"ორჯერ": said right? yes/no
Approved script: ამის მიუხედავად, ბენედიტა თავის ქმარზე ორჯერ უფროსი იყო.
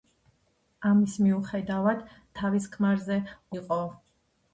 no